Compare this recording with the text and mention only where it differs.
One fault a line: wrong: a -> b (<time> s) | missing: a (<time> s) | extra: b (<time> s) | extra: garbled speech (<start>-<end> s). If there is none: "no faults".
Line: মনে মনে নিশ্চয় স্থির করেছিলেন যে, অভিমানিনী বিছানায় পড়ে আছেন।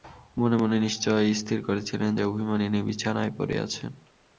no faults